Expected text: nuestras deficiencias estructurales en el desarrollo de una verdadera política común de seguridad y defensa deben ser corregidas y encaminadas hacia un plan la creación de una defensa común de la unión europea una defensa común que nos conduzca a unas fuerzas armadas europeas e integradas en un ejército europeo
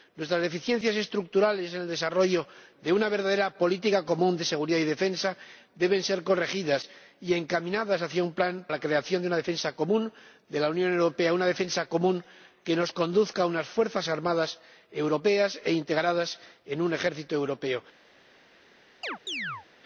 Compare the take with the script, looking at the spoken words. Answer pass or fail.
pass